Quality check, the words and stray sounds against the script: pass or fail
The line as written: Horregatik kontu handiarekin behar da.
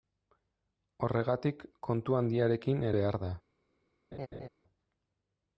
fail